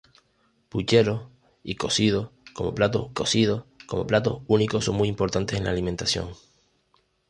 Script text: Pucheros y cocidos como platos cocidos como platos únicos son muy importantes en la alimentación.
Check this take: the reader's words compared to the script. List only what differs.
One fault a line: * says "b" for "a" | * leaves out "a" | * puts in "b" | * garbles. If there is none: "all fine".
all fine